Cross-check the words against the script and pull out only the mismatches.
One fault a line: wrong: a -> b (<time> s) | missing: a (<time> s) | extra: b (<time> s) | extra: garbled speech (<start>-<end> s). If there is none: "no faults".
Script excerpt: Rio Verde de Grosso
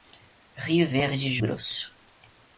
no faults